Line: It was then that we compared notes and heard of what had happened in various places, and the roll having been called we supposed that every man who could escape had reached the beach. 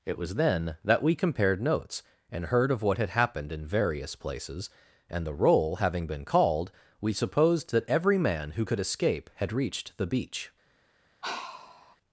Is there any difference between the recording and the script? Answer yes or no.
no